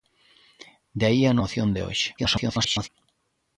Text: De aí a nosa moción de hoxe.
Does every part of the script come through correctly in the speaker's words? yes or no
no